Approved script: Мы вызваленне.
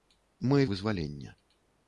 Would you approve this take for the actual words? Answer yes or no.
yes